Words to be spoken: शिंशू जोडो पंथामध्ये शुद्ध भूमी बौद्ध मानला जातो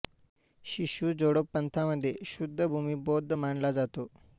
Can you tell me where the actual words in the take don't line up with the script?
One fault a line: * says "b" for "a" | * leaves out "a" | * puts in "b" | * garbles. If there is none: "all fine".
all fine